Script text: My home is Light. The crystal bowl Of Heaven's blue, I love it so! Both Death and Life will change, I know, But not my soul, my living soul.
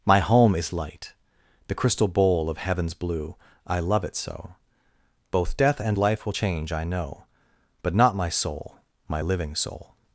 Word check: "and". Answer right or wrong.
right